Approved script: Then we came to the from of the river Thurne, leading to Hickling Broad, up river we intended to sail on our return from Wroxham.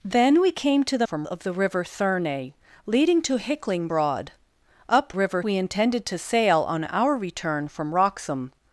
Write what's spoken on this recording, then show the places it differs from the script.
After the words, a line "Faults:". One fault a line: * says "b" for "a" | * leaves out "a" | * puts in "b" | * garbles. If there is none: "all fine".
Then we came to the from of the river Thurne, leading to Hickling Broad, up river we intended to sail on our return from Wroxham.
Faults:
all fine